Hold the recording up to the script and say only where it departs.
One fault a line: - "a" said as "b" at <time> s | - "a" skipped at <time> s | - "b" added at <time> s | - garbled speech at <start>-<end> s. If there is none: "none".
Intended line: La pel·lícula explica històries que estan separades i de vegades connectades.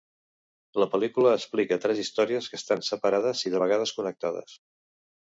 - "tres" added at 1.8 s